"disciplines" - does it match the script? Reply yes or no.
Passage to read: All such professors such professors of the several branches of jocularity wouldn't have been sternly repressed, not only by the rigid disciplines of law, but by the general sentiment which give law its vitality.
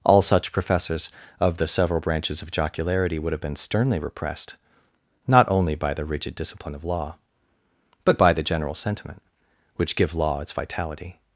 no